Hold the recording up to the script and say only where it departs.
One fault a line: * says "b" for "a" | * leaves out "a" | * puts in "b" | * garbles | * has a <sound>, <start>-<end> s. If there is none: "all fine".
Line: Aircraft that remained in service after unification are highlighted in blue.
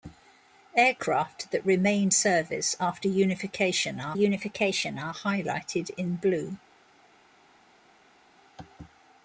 * leaves out "in"
* puts in "unification are"